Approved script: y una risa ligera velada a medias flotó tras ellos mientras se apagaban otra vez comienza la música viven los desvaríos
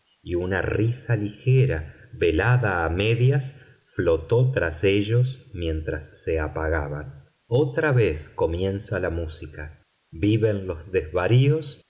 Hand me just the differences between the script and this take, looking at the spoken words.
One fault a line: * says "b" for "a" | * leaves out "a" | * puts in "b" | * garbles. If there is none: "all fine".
all fine